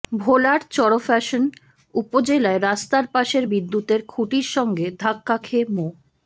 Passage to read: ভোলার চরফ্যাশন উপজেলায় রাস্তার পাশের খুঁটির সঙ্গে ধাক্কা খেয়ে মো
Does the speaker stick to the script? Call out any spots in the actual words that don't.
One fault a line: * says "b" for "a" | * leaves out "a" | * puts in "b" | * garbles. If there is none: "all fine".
* puts in "বিদ্যুতের"